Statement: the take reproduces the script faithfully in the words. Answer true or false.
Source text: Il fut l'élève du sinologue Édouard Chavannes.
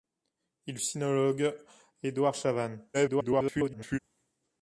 false